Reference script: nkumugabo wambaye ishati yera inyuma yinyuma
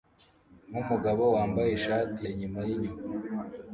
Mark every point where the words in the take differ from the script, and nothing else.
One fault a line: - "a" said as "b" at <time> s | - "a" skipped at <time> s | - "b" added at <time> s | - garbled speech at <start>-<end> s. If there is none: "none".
- "yera" skipped at 2.2 s